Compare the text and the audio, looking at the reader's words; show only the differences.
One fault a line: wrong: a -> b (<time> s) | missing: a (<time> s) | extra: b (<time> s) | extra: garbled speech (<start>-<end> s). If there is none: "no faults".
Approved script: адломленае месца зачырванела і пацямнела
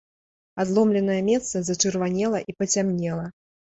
no faults